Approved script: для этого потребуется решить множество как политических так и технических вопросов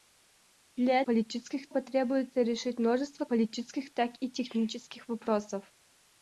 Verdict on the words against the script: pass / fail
fail